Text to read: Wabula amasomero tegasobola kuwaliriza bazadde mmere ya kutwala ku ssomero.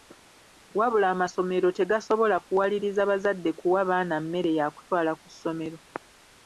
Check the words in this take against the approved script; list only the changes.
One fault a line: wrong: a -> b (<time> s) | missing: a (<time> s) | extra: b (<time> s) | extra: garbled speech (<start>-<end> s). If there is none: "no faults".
extra: kuwa baana (3.6 s)